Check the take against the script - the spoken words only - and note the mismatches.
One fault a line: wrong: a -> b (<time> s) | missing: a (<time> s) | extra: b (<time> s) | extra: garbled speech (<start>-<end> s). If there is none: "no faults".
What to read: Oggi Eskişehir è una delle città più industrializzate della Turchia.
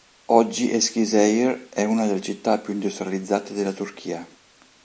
no faults